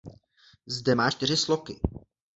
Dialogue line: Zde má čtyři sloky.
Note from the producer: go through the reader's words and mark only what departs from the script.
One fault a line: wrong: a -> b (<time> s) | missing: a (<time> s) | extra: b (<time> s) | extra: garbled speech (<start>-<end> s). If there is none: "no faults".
no faults